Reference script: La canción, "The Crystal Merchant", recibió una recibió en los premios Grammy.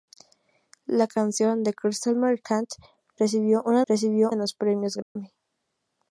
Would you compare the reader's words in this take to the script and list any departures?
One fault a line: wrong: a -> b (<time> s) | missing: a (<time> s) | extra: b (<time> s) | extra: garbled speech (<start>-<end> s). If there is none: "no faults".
no faults